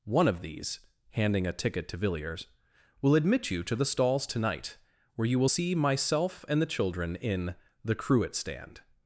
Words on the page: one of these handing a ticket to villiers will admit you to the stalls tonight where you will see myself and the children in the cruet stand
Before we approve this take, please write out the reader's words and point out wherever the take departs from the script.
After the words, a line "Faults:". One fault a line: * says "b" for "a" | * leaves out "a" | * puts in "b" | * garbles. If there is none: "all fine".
one of these handing a ticket to villiers will admit you to the stalls tonight where you will see myself and the children in the cruet stand
Faults:
all fine